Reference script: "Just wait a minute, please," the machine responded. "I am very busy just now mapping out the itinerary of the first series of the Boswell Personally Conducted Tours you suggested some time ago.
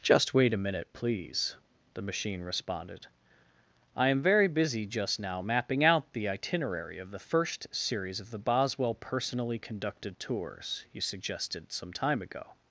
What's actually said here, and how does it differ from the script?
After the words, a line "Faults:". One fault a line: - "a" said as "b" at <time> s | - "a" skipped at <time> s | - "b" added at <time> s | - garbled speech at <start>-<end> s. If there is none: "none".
"Just wait a minute, please," the machine responded. "I am very busy just now mapping out the itinerary of the first series of the Boswell Personally Conducted Tours you suggested some time ago.
Faults:
none